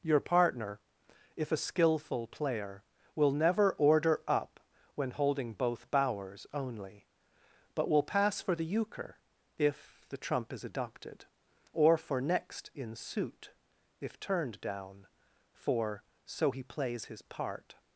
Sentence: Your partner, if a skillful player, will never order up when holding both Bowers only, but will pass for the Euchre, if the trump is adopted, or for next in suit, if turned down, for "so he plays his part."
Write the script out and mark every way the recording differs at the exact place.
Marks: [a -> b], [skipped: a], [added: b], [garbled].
Your partner, if a skillful player, will never order up when holding both Bowers only, but will pass for the Euchre, if the trump is adopted, or for next in suit, if turned down, for "so he plays his part."